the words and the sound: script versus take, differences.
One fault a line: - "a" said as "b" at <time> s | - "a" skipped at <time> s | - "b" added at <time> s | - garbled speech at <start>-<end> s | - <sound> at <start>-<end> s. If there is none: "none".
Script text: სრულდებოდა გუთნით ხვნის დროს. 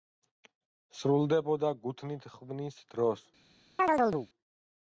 - chirp at 3.8-4.3 s